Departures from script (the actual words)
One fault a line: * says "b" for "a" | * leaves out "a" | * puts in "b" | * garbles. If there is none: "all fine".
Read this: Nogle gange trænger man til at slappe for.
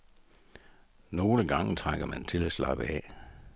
* says "af" for "for"